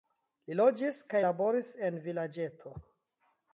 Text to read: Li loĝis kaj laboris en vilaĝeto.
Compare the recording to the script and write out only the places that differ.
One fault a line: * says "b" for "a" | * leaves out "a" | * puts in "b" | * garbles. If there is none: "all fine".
all fine